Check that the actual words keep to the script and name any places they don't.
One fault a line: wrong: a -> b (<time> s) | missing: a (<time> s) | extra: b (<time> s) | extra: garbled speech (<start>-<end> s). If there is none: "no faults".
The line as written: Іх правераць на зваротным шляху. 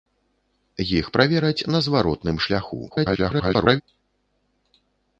extra: garbled speech (2.9-3.8 s)